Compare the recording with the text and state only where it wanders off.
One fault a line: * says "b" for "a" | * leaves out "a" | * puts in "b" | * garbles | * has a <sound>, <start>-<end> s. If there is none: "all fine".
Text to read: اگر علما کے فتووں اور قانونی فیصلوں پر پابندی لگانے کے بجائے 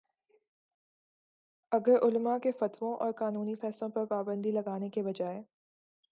all fine